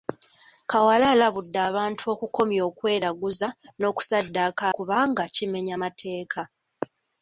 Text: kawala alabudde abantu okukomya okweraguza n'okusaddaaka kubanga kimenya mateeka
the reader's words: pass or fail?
pass